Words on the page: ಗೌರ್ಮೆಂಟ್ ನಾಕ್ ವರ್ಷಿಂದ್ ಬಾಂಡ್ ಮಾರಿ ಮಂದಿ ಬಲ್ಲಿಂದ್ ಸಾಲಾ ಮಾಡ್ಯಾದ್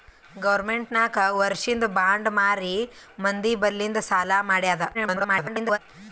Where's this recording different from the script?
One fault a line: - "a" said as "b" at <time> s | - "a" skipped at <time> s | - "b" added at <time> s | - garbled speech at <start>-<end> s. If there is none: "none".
- garbled speech at 4.9-5.8 s